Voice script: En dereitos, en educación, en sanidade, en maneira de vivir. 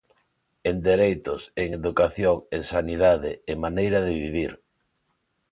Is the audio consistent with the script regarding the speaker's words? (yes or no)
yes